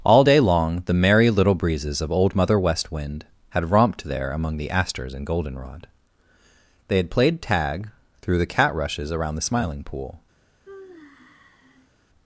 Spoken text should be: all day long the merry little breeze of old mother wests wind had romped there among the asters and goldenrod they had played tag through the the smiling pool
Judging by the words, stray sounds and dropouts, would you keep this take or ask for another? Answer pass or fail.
fail